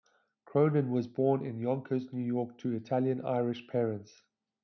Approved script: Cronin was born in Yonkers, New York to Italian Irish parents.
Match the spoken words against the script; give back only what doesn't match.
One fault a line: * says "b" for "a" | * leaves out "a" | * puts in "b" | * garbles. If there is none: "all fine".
all fine